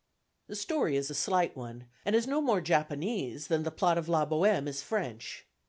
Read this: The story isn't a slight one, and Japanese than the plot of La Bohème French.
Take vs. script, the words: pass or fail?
fail